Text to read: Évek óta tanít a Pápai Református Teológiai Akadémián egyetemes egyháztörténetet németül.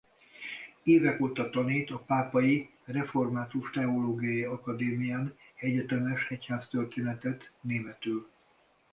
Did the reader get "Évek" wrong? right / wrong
right